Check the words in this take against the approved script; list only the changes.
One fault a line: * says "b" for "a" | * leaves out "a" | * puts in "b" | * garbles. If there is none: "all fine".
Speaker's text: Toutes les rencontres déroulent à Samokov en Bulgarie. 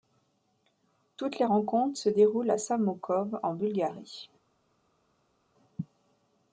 * puts in "se"